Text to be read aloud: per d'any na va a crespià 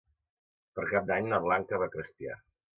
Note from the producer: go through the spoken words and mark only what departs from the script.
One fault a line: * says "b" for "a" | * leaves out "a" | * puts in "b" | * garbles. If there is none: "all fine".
* puts in "cap"
* puts in "blanca"